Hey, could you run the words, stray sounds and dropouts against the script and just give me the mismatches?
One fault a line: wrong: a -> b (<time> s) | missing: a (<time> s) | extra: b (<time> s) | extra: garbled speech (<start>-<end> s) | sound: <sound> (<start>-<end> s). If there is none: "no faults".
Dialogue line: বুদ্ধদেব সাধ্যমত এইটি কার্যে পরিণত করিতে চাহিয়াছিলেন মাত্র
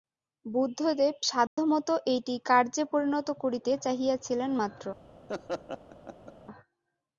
sound: dropout (1.5-1.6 s)
sound: laugh (5.3-6.3 s)